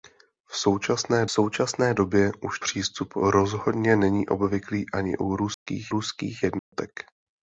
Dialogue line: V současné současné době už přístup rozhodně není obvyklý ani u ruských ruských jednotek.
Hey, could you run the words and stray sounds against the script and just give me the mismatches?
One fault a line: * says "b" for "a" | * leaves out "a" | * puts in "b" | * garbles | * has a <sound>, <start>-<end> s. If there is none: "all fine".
* has a dropout, 5.5-5.7 s
* has a dropout, 6.6-6.7 s